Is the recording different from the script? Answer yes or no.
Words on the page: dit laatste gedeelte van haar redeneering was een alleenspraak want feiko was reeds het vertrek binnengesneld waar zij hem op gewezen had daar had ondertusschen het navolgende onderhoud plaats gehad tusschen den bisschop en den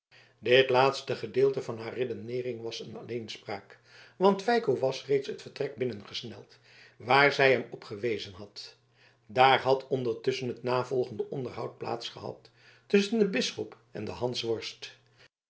no